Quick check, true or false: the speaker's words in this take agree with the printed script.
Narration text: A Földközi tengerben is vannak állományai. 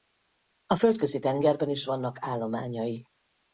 true